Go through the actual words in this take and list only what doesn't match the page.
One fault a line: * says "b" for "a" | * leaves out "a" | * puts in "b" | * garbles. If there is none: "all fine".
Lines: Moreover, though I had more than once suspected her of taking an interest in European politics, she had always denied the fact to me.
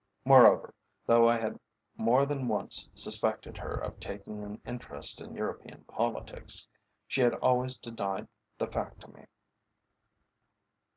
all fine